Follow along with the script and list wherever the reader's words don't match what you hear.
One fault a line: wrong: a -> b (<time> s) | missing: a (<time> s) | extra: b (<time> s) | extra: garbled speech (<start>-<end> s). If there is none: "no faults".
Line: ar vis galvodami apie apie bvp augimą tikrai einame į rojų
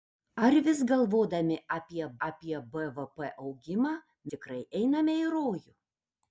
no faults